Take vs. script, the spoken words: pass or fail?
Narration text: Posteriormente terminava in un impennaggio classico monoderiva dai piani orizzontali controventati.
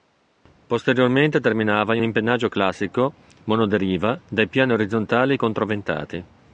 fail